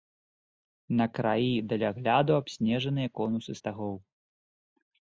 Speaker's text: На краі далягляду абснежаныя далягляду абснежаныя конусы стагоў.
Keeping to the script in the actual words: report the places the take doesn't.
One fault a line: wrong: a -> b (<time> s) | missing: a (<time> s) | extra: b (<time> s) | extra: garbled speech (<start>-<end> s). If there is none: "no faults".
missing: далягляду абснежаныя (3.1 s)